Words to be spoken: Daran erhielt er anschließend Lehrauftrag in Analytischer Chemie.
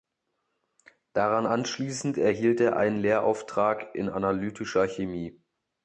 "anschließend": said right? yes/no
no